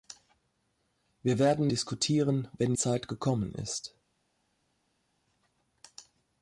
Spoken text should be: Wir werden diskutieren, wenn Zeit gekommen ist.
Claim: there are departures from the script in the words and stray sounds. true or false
false